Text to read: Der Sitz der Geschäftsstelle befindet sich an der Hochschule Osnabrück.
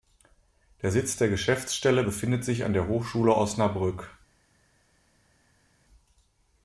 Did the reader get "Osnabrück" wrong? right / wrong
right